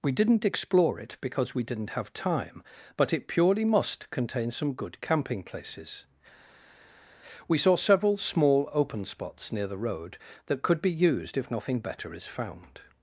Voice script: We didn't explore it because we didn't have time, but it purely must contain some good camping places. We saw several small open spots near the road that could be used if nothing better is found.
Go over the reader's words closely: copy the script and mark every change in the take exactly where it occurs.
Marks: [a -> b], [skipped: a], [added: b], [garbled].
We didn't explore it because we didn't have time, but it purely must contain some good camping places. We saw several small open spots near the road that could be used if nothing better is found.